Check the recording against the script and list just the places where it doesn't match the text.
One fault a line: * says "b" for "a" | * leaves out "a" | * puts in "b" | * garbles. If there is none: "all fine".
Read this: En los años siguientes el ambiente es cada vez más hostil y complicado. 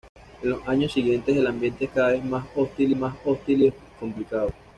* puts in "más hostil"